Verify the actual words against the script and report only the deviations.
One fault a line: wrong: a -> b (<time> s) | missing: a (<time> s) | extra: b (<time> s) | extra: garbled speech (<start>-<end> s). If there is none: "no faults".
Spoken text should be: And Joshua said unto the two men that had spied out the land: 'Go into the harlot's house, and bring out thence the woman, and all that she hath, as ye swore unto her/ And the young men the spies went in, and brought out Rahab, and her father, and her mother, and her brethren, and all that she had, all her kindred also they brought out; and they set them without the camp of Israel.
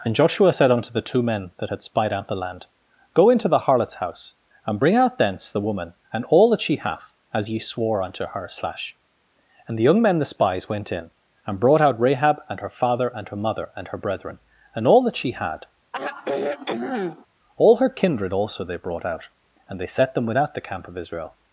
extra: slash (8.5 s)